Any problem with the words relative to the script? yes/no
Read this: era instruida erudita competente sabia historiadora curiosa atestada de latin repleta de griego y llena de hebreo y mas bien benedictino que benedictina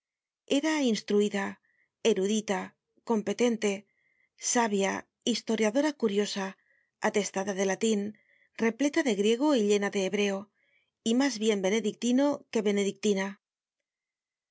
no